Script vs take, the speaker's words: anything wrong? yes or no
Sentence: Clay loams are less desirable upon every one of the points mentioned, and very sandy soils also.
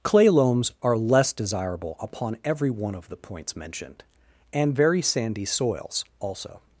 no